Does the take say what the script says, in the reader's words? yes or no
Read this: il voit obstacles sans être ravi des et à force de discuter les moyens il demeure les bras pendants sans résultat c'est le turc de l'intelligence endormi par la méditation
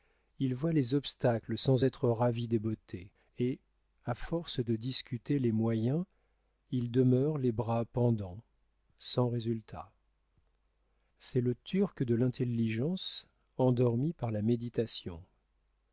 no